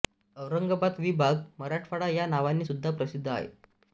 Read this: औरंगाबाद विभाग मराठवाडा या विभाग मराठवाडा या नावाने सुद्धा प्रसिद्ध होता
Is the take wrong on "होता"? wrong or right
wrong